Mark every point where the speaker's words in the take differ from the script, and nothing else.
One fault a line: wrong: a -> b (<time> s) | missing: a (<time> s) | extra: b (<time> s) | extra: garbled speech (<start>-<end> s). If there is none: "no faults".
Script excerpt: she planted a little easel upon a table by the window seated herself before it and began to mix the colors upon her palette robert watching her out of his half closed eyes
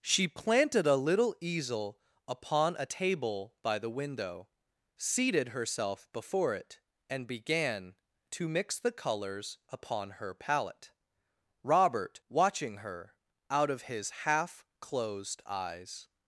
no faults